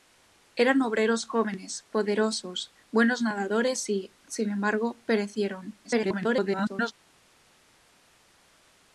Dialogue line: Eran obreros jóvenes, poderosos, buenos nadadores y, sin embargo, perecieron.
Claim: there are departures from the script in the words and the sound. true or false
true